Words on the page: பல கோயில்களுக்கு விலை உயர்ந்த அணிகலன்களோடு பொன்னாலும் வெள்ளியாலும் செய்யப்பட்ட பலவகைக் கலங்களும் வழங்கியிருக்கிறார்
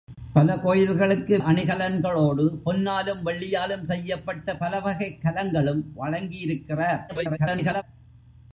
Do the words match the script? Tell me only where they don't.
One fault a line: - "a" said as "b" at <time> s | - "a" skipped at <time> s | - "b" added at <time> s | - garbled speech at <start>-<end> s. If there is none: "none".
- "விலை உயர்ந்த" skipped at 1.4 s
- garbled speech at 7.1-7.8 s